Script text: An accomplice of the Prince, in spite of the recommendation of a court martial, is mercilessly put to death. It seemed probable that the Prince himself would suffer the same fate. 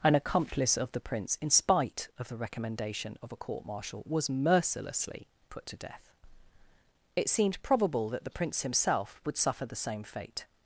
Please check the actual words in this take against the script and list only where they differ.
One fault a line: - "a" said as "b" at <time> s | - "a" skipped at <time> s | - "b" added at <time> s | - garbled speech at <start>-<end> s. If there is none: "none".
- "is" said as "was" at 4.1 s